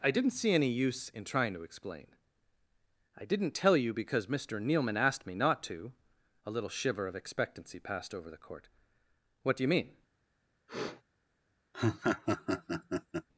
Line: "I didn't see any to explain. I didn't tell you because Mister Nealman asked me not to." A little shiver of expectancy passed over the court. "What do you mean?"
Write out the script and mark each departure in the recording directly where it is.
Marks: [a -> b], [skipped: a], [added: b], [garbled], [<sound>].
"I didn't see any [added: use in trying] to explain. I didn't tell you because Mister Nealman asked me not to." A little shiver of expectancy passed over the court. "What do you mean?" [sniff] [laugh]